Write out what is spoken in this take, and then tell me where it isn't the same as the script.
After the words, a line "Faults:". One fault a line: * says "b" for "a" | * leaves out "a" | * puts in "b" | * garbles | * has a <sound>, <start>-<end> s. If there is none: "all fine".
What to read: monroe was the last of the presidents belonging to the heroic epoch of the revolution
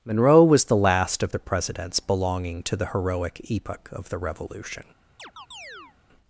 monroe was the last of the presidents belonging to the heroic epoch of the revolution
Faults:
* has a chirp, 5.2-6.0 s